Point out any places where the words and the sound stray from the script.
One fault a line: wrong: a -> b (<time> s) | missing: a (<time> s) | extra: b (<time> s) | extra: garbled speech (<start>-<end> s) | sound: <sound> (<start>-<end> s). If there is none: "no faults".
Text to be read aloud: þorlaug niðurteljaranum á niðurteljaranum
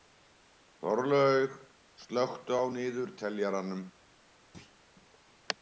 wrong: niðurteljaranum -> slökktu (2.0 s)
sound: thud (4.5-4.8 s)